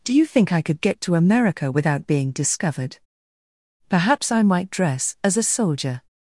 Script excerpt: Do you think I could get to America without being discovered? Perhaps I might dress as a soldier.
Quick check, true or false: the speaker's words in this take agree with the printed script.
true